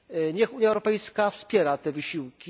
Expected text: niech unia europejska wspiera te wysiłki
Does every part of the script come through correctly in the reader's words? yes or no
yes